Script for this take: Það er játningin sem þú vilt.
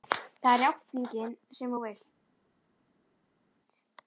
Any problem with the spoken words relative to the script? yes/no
no